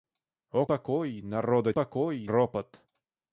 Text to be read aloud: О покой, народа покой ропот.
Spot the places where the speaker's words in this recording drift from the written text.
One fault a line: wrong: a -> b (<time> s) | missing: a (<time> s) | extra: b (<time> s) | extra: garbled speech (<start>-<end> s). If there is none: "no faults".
no faults